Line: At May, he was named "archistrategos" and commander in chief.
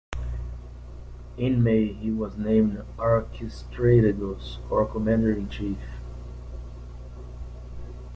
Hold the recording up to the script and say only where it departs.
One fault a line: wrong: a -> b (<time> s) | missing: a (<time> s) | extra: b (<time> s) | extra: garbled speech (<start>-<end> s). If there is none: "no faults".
wrong: At -> In (1.4 s)
wrong: and -> or (4.7 s)